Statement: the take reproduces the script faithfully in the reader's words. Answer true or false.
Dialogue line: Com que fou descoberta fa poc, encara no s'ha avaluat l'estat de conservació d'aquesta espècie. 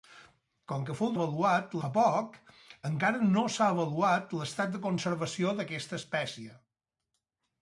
false